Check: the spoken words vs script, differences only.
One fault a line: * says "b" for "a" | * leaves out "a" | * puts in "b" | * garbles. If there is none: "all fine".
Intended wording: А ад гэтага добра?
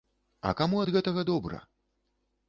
* puts in "каму"